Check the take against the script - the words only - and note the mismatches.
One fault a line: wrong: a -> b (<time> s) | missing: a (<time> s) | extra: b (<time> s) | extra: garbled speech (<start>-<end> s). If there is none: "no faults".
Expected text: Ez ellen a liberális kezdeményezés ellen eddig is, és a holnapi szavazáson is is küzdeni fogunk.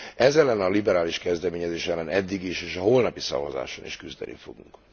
missing: is (4.0 s)